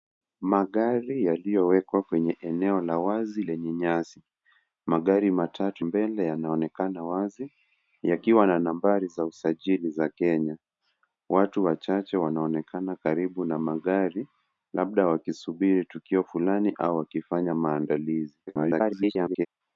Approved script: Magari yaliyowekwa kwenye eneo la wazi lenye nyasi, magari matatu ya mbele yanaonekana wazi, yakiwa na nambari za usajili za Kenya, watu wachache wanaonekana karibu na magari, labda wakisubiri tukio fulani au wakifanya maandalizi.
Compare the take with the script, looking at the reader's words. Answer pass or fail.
fail